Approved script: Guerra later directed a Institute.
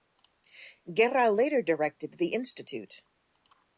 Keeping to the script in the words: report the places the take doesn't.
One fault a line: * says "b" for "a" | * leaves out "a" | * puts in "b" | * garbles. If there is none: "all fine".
* says "the" for "a"